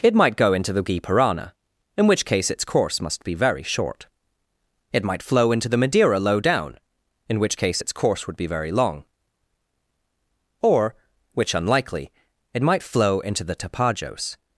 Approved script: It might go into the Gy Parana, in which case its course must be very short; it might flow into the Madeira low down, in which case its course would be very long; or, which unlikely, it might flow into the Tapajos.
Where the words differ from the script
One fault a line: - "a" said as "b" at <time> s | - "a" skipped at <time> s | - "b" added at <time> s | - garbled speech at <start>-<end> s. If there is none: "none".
none